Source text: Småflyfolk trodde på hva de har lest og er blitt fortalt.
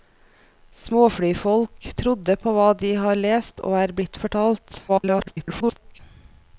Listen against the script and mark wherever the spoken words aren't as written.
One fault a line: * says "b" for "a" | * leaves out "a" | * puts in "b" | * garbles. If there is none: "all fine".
* garbles